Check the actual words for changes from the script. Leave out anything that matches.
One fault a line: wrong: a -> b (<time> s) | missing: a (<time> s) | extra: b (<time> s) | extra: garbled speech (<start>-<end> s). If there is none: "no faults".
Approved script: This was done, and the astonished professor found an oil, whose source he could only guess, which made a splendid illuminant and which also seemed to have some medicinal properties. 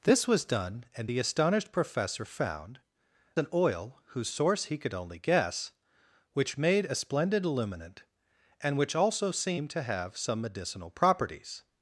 no faults